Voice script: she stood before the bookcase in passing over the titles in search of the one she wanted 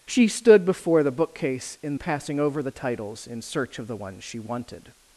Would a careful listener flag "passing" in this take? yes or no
no